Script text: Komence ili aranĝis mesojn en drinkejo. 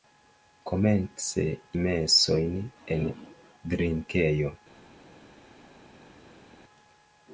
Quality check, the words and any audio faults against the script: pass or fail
fail